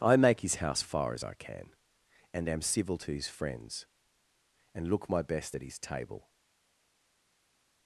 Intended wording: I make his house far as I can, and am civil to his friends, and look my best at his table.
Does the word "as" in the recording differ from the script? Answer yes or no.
no